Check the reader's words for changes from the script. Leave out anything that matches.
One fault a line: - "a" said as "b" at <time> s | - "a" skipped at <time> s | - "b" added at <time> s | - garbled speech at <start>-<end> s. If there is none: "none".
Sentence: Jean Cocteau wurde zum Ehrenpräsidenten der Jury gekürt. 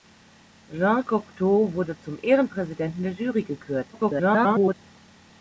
- garbled speech at 3.9-4.7 s